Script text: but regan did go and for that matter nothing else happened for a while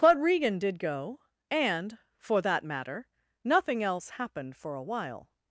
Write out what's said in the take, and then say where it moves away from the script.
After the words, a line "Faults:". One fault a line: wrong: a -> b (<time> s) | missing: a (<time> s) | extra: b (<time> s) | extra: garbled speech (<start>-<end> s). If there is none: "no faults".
but regan did go and for that matter nothing else happened for a while
Faults:
no faults